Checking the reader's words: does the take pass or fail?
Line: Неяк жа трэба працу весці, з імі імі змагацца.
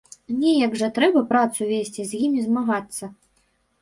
fail